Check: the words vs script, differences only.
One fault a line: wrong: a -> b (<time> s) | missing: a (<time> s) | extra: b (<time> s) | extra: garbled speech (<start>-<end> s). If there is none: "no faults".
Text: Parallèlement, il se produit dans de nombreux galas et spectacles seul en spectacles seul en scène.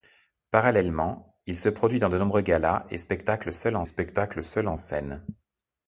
no faults